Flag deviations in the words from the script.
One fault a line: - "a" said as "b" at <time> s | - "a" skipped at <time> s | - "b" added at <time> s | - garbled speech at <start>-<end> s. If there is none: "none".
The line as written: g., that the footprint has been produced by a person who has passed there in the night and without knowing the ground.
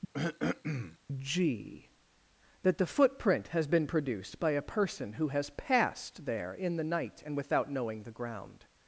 none